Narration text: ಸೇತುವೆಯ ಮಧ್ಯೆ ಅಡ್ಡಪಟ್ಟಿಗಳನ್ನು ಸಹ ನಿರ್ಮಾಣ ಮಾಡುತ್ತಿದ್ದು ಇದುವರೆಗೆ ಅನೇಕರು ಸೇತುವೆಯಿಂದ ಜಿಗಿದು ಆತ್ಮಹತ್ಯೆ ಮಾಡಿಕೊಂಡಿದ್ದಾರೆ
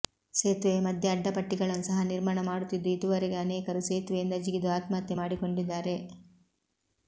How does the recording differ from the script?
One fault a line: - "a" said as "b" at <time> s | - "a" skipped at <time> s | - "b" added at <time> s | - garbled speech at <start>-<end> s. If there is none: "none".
none